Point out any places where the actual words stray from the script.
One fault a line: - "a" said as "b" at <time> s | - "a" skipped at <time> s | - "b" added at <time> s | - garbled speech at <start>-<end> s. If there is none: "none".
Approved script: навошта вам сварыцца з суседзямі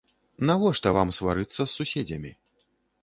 none